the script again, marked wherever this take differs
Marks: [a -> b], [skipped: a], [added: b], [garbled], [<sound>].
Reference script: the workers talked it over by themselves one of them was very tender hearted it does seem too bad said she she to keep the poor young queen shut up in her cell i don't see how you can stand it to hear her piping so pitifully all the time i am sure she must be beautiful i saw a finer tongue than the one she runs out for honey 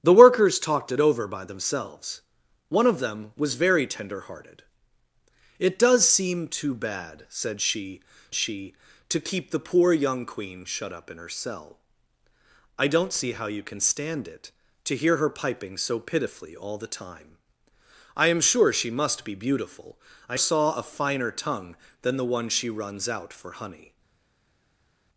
the workers talked it over by themselves one of them was very tender hearted it does seem too bad said she she to keep the poor young queen shut up in her cell i don't see how you can stand it to hear her piping so pitifully all the time i am sure she must be beautiful i saw a finer tongue than the one she runs out for honey